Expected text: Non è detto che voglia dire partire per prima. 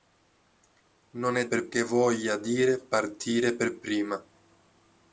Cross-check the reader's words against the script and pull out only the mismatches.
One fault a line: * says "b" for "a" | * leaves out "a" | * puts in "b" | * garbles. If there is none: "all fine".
* says "per" for "detto"